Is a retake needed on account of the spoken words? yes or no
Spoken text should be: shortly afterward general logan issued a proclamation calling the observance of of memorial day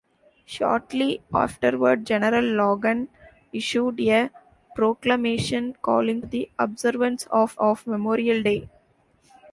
no